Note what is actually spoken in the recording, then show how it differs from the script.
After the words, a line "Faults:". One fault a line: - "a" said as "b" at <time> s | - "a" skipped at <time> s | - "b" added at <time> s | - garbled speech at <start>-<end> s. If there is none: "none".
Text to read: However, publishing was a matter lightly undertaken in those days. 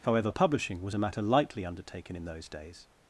However, publishing was a matter lightly undertaken in those days.
Faults:
none